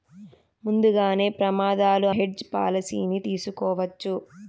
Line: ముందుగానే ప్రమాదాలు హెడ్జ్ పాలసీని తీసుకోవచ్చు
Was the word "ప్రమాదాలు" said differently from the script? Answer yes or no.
no